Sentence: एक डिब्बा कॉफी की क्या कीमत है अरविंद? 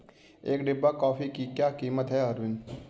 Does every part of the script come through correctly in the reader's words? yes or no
yes